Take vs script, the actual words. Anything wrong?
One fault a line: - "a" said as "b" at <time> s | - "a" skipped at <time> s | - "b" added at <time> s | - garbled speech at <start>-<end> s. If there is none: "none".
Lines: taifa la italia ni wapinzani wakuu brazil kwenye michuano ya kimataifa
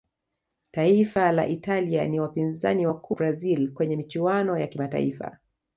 none